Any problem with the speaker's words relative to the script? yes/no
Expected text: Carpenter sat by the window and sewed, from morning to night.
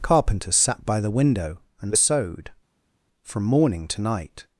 no